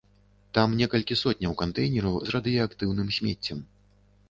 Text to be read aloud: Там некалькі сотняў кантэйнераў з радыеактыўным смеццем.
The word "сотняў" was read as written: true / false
true